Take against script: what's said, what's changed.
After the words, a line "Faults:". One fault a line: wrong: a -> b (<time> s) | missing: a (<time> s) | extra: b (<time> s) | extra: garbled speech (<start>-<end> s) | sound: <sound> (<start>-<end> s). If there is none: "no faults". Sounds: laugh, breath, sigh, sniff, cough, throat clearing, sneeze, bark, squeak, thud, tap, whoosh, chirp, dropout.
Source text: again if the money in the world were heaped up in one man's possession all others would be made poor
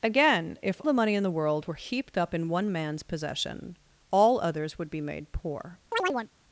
again if the money in the world were heaped up in one man's possession all others would be made poor
Faults:
sound: chirp (5.9-6.3 s)